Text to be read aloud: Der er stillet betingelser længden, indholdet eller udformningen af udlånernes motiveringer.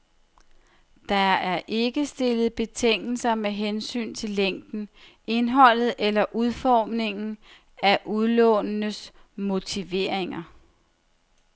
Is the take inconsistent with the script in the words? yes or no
yes